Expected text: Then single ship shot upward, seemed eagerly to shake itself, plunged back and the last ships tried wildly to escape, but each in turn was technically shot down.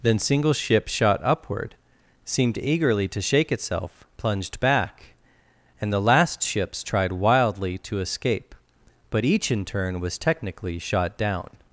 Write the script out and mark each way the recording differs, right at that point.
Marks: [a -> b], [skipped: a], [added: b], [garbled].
Then single ship shot upward, seemed eagerly to shake itself, plunged back and the last ships tried wildly to escape, but each in turn was technically shot down.